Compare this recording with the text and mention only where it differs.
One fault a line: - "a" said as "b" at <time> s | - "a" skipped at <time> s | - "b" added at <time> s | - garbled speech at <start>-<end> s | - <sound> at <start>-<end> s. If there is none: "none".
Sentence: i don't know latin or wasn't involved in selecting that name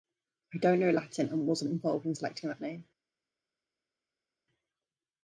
- "or" said as "and" at 1.3 s